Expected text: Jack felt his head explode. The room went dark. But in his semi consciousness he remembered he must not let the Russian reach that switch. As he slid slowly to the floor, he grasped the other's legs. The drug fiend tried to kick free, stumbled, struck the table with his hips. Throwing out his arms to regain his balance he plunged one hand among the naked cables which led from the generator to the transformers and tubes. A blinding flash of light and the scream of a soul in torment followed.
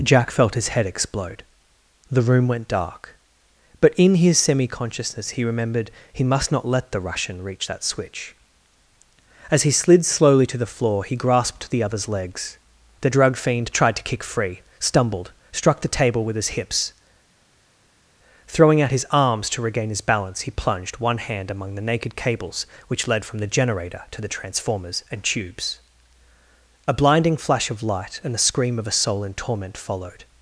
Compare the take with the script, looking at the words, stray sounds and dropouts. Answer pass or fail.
pass